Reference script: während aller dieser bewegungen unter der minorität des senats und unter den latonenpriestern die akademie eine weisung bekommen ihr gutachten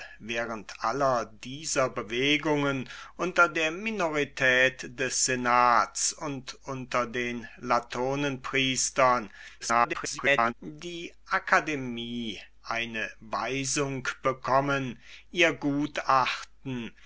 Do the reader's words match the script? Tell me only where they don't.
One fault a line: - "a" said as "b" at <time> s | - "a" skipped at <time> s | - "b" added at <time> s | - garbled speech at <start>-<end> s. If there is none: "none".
- garbled speech at 9.6-10.5 s